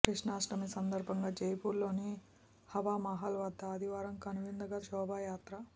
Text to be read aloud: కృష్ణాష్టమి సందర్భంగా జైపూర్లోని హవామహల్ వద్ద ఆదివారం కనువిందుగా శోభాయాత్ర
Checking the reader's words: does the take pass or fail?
pass